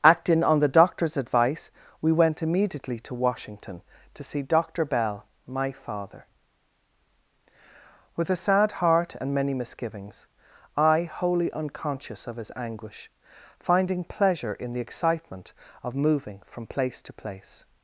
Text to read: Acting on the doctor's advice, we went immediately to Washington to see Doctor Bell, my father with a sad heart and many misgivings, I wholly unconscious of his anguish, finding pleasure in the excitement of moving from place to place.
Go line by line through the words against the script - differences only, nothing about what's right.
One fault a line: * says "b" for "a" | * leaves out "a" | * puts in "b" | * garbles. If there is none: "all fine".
all fine